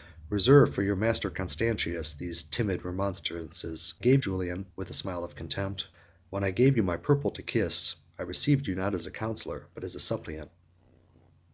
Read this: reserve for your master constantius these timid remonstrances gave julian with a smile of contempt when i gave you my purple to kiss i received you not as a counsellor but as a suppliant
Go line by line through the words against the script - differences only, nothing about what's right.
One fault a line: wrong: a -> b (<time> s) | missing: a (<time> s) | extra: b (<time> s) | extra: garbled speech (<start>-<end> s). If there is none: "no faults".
no faults